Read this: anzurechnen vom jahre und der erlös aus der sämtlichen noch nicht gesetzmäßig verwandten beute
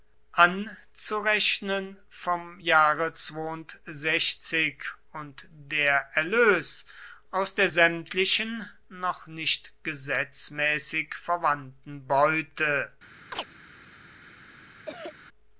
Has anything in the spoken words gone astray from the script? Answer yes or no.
no